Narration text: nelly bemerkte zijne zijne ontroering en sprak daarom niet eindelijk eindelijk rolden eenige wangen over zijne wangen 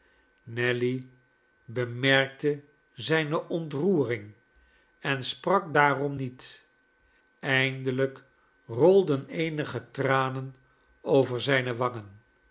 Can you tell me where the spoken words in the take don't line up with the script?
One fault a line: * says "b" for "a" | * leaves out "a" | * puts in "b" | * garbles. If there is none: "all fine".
* leaves out "zijne"
* leaves out "eindelijk"
* says "tranen" for "wangen"